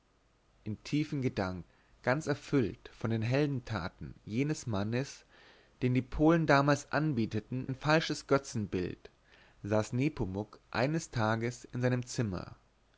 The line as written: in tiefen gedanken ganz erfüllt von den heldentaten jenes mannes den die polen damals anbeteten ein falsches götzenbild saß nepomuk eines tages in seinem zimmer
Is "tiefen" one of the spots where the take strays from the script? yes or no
no